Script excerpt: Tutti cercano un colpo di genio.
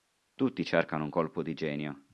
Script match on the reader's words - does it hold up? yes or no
yes